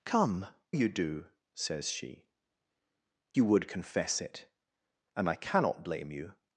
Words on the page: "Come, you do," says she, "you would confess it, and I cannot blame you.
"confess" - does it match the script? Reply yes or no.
yes